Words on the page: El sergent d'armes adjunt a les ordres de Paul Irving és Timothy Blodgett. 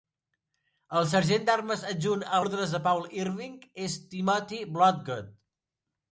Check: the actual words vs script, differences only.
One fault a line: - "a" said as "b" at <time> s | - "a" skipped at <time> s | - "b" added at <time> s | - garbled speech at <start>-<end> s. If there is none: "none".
- "les" skipped at 2.4 s